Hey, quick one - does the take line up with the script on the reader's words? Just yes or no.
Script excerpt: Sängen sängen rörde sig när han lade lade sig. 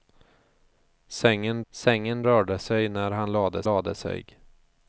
yes